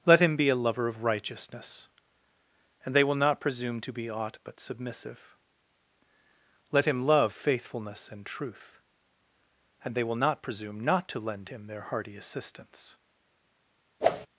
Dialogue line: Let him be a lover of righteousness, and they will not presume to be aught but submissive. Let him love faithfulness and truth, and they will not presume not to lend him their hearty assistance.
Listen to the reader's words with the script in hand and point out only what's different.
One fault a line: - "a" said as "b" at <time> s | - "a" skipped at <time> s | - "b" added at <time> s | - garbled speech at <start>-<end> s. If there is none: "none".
none